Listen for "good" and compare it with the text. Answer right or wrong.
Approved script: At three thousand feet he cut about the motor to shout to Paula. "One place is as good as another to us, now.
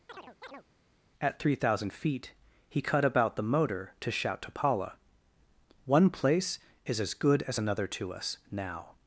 right